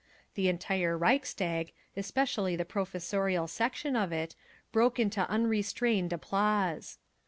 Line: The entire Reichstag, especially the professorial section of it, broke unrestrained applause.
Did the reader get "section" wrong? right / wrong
right